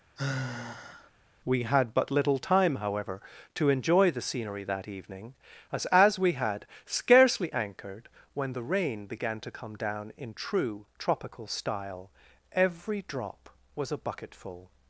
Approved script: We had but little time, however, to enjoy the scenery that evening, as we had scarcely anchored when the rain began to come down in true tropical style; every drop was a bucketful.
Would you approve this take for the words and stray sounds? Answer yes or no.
no